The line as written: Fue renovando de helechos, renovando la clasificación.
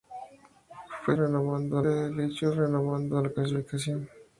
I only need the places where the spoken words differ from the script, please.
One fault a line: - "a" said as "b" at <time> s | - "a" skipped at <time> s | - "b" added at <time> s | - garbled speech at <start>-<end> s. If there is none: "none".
none